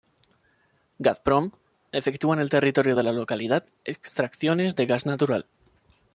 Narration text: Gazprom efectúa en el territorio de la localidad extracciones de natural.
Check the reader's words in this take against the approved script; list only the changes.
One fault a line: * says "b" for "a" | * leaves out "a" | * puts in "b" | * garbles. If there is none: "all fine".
* puts in "gas"